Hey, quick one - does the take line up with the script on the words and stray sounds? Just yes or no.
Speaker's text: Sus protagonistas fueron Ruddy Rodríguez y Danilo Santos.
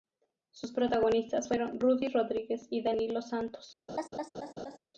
no